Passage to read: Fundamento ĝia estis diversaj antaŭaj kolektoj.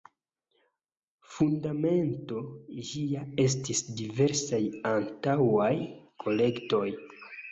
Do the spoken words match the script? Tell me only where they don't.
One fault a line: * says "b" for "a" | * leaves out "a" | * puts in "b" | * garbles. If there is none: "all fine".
all fine